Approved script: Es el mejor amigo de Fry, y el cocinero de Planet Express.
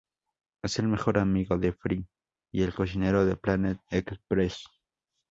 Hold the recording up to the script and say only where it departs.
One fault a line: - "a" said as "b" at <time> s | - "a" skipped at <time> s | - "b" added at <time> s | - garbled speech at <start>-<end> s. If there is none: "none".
none